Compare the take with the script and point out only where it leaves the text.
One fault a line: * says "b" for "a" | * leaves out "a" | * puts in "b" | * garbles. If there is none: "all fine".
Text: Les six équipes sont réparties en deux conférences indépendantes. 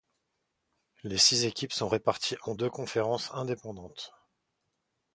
all fine